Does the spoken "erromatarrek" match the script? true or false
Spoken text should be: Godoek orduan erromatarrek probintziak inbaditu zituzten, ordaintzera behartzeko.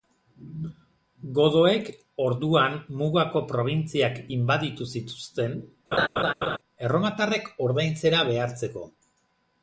false